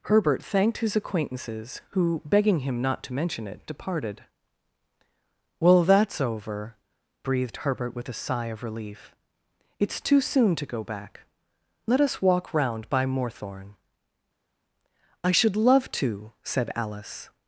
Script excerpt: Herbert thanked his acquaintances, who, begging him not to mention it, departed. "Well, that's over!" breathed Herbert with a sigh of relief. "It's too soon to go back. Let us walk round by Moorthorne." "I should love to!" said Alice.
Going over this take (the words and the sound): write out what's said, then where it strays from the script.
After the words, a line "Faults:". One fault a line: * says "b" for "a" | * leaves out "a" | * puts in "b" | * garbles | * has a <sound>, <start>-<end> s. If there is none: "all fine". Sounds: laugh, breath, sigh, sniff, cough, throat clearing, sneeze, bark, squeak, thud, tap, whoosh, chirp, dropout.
Herbert thanked his acquaintances, who, begging him not to mention it, departed. "Well, that's over!" breathed Herbert with a sigh of relief. "It's too soon to go back. Let us walk round by Moorthorne." "I should love to!" said Alice.
Faults:
all fine